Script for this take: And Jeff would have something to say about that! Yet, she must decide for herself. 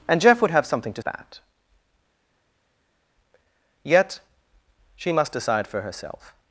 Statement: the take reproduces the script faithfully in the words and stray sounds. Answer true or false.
false